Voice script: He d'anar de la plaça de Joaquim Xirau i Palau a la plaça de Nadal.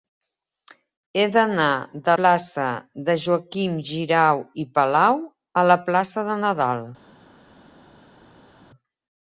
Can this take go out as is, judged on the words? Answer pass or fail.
fail